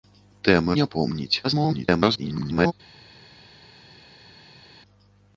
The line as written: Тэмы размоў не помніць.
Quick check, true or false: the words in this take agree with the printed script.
false